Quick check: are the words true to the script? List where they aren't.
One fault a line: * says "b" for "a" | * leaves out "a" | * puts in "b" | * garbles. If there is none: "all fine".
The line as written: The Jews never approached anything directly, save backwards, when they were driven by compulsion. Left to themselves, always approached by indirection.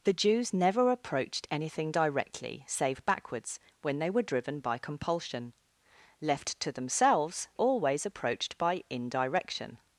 all fine